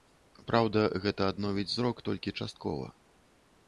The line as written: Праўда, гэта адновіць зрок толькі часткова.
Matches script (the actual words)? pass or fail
pass